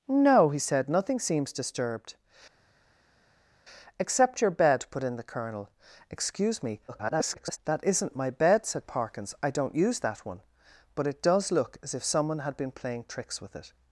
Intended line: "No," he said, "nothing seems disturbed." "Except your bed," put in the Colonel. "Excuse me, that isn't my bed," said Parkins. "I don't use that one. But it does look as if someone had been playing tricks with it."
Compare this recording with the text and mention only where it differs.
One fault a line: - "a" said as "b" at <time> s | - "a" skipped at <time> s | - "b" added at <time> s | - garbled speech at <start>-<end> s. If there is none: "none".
- garbled speech at 6.9-7.6 s